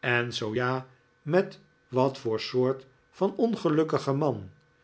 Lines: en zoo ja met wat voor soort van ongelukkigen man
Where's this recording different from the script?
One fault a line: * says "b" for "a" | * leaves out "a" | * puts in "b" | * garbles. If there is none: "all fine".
all fine